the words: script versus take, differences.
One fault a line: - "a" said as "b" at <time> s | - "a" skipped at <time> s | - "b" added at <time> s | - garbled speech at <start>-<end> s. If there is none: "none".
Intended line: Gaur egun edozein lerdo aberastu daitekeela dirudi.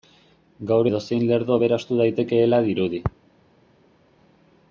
- "egun" skipped at 0.9 s